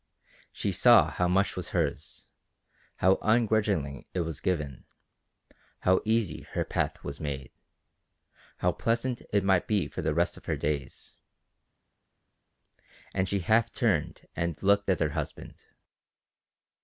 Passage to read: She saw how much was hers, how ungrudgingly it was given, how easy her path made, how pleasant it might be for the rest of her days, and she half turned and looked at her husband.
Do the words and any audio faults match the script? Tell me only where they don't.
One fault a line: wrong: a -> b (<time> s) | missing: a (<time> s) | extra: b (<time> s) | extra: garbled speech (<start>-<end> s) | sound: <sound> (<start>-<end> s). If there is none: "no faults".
extra: was (7.0 s)